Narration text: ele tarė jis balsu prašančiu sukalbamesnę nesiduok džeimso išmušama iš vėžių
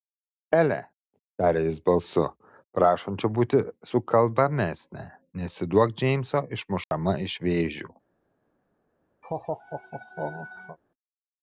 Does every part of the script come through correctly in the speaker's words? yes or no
no